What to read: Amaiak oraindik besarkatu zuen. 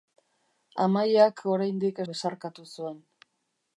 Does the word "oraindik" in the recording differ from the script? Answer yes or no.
no